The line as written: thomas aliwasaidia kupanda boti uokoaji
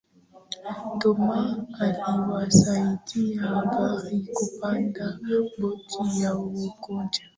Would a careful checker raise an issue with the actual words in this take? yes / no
yes